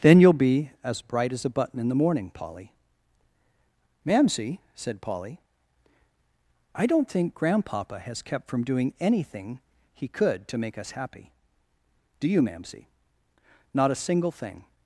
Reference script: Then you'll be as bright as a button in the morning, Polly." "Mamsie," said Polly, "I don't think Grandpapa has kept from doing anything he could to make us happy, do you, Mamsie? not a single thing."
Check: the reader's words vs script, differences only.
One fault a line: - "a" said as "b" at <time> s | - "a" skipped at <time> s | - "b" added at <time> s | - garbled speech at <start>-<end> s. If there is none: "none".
none